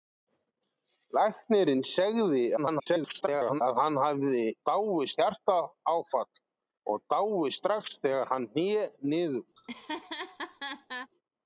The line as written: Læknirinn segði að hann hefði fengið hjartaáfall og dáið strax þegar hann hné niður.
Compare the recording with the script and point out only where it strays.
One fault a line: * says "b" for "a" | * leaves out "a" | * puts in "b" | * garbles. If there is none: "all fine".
* garbles
* says "dáið" for "fengið"